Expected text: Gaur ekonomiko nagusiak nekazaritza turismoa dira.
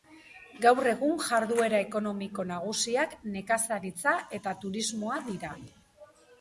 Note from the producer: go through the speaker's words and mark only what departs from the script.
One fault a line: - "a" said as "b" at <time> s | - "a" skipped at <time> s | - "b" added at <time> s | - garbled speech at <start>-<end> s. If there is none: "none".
- "egun jarduera" added at 0.9 s
- "eta" added at 4.4 s